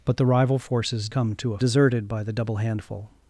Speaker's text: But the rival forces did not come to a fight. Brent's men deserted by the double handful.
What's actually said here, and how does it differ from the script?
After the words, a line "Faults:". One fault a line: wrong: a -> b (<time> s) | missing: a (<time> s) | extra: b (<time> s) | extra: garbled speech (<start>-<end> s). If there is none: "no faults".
But the rival forces come to a deserted by the double handful.
Faults:
missing: did not (1.1 s)
missing: fight Brent's men (1.6 s)